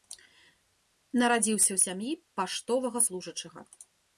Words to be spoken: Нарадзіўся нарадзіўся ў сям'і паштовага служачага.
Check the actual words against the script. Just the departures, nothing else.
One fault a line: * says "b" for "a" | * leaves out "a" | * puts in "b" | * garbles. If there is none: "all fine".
* leaves out "нарадзіўся"